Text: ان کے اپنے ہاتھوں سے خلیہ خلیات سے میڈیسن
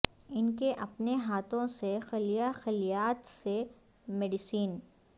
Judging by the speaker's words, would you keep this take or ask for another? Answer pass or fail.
pass